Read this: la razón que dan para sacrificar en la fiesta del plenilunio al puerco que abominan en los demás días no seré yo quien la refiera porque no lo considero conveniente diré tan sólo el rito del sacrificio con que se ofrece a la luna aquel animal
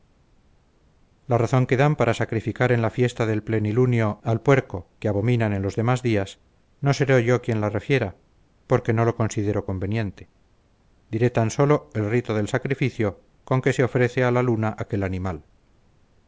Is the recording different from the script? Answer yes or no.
no